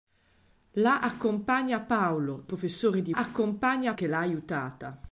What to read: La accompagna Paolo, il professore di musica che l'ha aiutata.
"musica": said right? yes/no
no